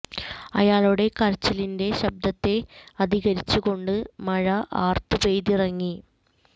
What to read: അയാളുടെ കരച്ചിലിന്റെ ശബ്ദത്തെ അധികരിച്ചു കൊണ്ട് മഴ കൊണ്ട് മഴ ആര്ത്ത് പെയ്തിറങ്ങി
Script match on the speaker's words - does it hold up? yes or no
no